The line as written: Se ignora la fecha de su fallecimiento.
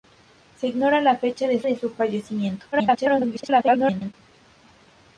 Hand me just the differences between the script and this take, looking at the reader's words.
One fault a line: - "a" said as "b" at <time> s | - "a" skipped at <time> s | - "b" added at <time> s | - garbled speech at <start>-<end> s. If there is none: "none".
- "de" added at 1.6 s
- garbled speech at 2.7-4.1 s